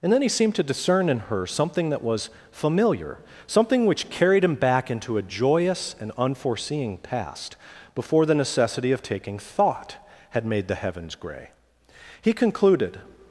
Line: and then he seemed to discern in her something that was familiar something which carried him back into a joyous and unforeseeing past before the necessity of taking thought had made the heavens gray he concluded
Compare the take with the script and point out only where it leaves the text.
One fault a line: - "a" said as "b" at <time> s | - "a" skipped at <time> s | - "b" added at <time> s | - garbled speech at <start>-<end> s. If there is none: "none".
none